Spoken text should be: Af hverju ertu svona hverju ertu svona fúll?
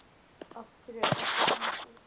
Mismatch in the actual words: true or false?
true